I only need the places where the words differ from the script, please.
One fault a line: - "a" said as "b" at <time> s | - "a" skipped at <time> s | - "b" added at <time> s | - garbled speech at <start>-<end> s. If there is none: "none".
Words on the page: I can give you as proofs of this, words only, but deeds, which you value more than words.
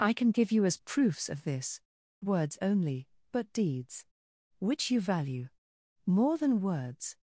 none